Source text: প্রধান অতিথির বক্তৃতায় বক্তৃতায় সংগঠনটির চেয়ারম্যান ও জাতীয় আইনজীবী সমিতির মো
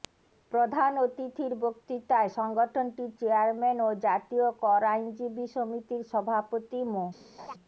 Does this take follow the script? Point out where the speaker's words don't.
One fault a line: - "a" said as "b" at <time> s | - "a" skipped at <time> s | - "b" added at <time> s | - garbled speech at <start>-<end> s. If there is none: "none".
- "বক্তৃতায়" skipped at 2.3 s
- "কর" added at 4.6 s
- "সভাপতি" added at 6.1 s